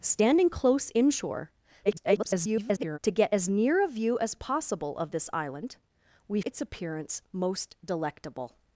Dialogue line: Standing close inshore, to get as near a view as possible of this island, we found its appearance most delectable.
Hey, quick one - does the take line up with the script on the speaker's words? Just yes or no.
no